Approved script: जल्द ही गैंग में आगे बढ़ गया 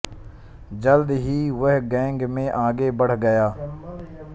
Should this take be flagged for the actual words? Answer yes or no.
yes